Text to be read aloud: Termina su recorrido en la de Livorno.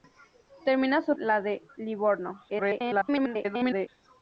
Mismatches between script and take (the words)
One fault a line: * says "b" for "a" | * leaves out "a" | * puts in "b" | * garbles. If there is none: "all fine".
* leaves out "recorrido en"
* garbles